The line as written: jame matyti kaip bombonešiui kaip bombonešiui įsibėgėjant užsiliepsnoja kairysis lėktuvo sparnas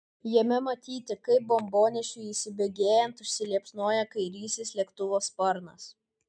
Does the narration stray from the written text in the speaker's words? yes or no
yes